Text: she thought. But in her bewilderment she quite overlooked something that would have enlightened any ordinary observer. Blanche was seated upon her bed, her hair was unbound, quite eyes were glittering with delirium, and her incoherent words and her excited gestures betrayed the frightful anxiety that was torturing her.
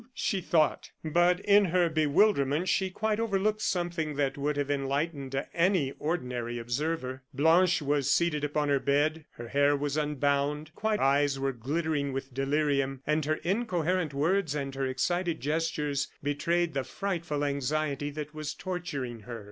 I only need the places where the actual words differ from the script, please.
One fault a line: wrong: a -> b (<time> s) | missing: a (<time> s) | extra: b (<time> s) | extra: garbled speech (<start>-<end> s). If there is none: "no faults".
no faults